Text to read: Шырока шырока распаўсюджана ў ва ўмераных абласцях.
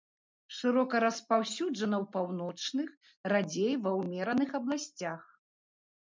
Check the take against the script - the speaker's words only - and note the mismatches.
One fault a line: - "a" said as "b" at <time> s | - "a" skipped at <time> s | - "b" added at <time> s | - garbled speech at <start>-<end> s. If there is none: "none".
- "шырока" skipped at 1.0 s
- "паўночных радзей" added at 2.1 s